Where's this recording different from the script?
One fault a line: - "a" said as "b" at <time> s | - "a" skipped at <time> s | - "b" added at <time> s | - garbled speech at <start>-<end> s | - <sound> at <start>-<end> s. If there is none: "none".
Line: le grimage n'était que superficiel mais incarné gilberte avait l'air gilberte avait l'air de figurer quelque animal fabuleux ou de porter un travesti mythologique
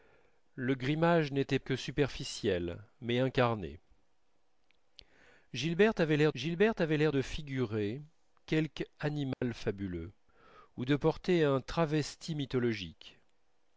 - dropout at 9.3-9.4 s